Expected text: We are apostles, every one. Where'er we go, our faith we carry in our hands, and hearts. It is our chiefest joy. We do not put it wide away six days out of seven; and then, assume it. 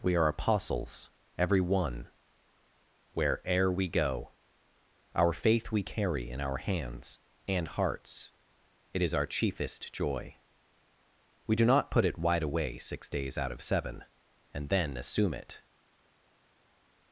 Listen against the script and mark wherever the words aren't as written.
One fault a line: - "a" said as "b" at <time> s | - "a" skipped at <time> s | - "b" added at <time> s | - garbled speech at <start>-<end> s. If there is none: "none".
none